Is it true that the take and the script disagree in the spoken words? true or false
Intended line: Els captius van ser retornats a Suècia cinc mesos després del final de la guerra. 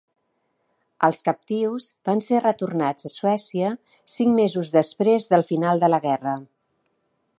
false